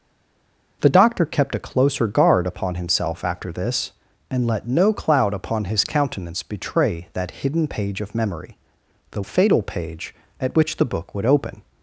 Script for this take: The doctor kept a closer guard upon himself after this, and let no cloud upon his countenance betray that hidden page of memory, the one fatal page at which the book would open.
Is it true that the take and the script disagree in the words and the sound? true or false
true